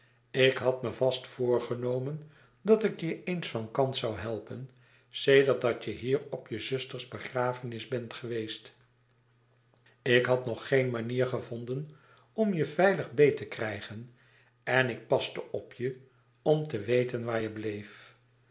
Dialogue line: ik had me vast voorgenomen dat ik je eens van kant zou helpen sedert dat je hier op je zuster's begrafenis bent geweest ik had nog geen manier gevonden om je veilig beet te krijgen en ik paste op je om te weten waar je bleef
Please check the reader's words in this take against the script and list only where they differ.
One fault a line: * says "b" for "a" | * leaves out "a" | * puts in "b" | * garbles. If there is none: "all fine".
all fine